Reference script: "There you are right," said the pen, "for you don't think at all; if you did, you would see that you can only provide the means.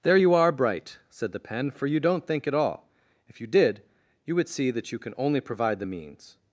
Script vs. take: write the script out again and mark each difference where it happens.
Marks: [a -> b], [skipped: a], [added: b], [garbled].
"There you are [right," -> bright] said the pen, "for you don't think at all; if you did, you would see that you can only provide the means.